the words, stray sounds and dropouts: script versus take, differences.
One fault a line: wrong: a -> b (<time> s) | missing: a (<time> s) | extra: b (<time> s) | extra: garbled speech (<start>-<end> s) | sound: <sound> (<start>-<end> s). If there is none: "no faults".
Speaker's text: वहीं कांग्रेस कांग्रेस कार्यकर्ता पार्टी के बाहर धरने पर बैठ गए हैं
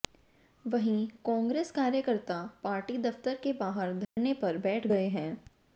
missing: कांग्रेस (1.7 s)
extra: दफ्तर (3.0 s)
sound: dropout (4.0-4.2 s)